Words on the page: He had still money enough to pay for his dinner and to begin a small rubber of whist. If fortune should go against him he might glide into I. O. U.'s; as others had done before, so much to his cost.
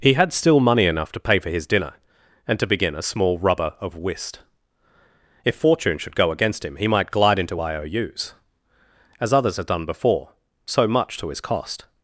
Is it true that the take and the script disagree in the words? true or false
false